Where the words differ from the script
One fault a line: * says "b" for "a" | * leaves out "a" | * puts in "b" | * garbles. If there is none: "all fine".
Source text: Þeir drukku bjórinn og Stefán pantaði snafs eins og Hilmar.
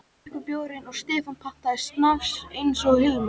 all fine